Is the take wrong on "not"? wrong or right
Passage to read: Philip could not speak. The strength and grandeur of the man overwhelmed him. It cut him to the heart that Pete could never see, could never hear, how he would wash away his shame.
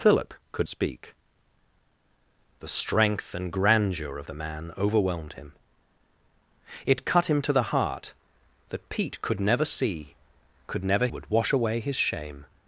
wrong